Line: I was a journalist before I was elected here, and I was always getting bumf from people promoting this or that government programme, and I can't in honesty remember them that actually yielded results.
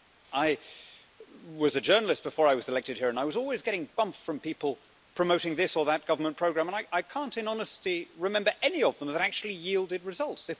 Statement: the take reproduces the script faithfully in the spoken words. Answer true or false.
false